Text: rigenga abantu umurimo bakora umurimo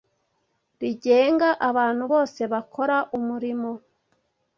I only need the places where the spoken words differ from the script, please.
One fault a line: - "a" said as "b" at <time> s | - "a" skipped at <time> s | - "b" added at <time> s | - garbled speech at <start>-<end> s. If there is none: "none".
- "umurimo" said as "bose" at 2.1 s